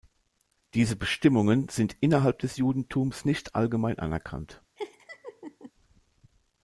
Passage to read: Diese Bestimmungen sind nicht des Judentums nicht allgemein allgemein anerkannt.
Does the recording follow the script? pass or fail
fail